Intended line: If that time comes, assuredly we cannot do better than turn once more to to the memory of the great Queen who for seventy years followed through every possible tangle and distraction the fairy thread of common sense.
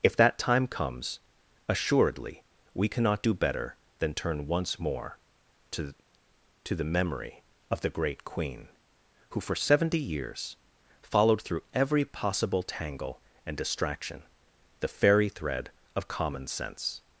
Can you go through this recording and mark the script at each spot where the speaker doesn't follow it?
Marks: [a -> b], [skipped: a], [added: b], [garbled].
If that time comes, assuredly we cannot do better than turn once more to to the memory of the great Queen who for seventy years followed through every possible tangle and distraction the fairy thread of common sense.